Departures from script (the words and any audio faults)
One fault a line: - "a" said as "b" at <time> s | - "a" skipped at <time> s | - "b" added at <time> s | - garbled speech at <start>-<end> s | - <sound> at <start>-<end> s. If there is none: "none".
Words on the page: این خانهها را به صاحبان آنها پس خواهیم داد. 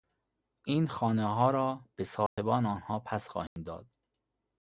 - dropout at 2.3-2.4 s
- dropout at 3.5-3.6 s